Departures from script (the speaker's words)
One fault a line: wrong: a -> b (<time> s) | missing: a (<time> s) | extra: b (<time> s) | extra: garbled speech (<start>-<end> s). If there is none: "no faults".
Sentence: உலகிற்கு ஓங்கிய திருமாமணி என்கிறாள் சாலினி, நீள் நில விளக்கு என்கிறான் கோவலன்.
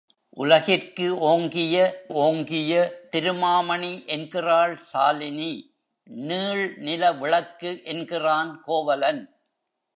extra: ஓங்கிய (2.1 s)